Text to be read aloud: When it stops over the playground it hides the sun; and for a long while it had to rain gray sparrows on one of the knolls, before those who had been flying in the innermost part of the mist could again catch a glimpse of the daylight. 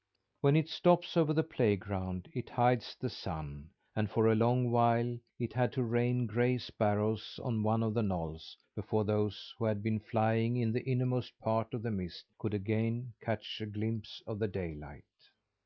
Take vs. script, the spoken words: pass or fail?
pass